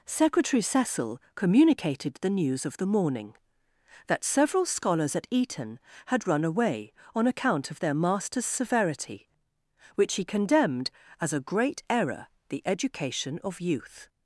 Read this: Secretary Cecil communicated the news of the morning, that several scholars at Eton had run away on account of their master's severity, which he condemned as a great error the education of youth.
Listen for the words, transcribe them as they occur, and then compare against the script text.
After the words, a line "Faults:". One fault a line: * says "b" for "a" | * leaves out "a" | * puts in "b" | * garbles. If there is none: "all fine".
Secretary Cecil communicated the news of the morning, that several scholars at Eton had run away on account of their master's severity, which he condemned as a great error the education of youth.
Faults:
all fine